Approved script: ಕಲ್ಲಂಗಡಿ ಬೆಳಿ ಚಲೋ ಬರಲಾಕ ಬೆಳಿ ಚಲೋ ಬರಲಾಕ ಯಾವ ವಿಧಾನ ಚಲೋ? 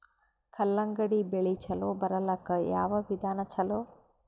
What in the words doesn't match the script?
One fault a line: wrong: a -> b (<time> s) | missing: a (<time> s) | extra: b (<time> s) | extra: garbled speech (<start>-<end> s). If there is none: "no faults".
missing: ಬೆಳಿ ಚಲೋ ಬರಲಾಕ (2.5 s)